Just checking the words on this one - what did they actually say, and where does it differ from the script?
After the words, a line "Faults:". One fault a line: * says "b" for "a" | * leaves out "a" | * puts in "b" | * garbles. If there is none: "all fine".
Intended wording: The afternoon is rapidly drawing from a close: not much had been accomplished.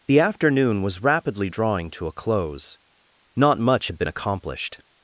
The afternoon was rapidly drawing to a close: not much had been accomplished.
Faults:
* says "was" for "is"
* says "to" for "from"